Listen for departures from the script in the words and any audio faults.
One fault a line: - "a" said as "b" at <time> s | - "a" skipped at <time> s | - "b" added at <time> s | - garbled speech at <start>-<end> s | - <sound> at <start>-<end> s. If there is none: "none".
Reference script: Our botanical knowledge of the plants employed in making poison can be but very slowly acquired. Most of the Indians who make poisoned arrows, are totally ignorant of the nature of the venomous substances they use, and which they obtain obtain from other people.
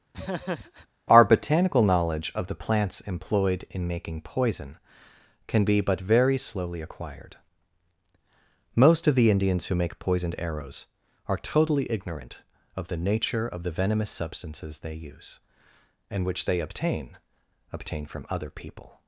- laugh at 0.1-0.9 s